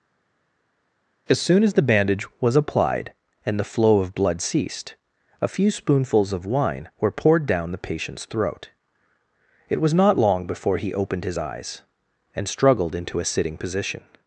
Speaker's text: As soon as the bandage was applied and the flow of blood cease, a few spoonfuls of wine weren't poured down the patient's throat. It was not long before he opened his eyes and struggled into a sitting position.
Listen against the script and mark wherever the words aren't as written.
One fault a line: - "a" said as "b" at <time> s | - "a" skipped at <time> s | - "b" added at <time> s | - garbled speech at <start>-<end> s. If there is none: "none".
- "cease" said as "ceased" at 4.4 s
- "weren't" said as "were" at 7.0 s